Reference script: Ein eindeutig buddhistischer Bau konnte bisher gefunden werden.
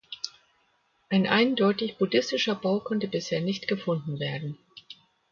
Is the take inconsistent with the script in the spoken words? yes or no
yes